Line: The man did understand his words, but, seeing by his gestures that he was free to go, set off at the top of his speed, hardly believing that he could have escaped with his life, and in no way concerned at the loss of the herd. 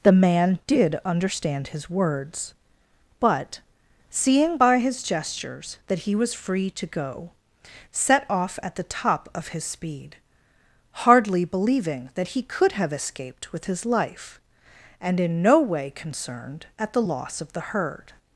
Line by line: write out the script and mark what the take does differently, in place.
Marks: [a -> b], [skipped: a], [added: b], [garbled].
The man did understand his words, but, seeing by his gestures that he was free to go, set off at the top of his speed, hardly believing that he could have escaped with his life, and in no way concerned at the loss of the herd.